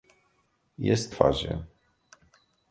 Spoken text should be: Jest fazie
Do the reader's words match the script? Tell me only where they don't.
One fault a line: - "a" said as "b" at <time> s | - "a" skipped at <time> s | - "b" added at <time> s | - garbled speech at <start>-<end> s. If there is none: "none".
none